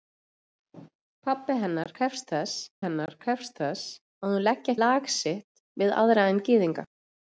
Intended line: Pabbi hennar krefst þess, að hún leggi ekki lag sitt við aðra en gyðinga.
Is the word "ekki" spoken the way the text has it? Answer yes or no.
no